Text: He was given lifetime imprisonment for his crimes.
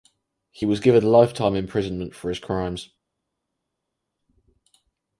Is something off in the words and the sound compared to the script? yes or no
no